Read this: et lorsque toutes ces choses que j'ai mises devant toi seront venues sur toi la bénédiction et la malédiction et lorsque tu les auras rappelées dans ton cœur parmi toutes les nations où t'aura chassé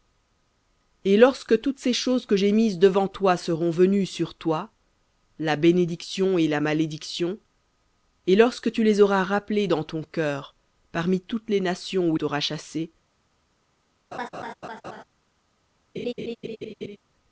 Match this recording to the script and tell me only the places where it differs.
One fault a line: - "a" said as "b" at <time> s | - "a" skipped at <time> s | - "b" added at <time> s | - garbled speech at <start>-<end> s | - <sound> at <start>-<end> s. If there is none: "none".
- laugh at 14.1-15.0 s
- laugh at 15.9-17.0 s